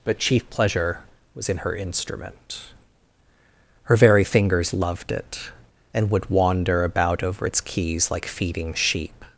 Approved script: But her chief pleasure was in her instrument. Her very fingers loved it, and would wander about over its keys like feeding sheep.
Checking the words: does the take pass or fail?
fail